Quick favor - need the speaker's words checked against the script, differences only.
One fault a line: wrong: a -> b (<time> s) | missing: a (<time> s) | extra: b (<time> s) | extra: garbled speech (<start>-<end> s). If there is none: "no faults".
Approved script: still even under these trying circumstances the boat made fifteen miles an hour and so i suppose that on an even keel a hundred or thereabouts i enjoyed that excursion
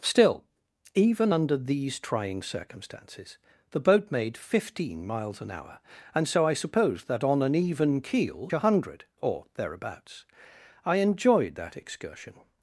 no faults